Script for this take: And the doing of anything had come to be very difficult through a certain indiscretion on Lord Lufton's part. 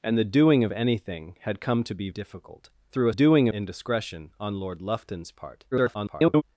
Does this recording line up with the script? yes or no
no